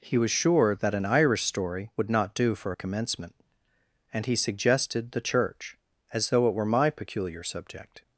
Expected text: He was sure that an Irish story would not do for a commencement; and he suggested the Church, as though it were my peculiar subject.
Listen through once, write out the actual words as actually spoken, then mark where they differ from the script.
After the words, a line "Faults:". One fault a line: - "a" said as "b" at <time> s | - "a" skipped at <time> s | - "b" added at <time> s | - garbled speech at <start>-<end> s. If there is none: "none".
He was sure that an Irish story would not do for a commencement; and he suggested the Church, as though it were my peculiar subject.
Faults:
none